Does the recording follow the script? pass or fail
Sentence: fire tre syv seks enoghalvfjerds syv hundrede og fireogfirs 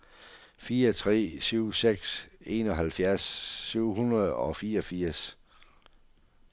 pass